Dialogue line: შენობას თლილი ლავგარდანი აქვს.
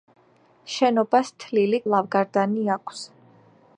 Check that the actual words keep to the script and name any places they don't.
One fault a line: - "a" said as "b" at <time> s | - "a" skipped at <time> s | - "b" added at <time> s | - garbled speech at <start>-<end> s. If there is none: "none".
none